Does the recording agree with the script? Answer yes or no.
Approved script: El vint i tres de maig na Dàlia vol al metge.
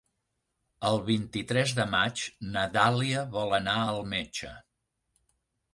no